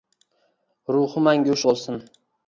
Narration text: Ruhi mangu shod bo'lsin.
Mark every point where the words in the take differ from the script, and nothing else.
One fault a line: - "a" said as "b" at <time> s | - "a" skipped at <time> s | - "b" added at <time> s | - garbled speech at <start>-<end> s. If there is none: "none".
- "shod" skipped at 1.6 s